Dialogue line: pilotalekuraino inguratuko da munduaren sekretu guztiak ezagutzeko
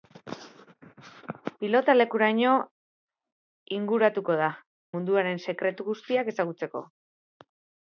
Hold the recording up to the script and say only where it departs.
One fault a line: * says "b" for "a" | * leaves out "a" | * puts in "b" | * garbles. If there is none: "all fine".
all fine